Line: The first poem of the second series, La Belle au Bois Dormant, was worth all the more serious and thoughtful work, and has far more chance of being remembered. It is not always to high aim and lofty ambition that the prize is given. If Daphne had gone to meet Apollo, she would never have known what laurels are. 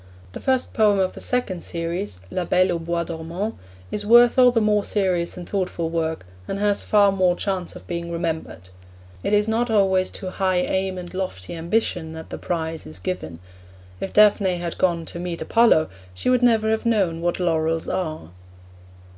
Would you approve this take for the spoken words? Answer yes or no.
no